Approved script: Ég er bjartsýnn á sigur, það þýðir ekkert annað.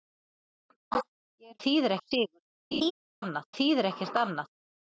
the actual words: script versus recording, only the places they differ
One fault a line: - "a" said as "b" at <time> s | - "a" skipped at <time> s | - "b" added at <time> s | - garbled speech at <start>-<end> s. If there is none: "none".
- "bjartsýnn" said as "þýðir" at 1.6 s
- "það" said as "annað" at 3.2 s